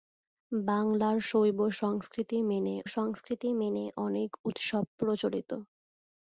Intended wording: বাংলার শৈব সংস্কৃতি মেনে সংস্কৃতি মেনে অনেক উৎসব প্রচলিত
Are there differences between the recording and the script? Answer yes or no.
no